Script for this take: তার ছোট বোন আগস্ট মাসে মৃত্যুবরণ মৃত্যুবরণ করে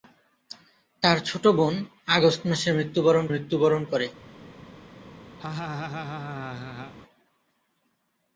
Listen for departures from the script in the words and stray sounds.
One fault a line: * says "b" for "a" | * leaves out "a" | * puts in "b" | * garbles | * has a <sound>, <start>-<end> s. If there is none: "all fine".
* has a laugh, 5.4-6.9 s